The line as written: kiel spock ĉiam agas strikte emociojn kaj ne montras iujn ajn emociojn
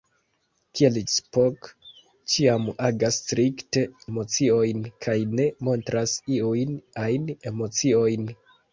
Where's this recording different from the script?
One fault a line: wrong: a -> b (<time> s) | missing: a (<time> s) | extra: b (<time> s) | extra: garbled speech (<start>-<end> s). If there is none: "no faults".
no faults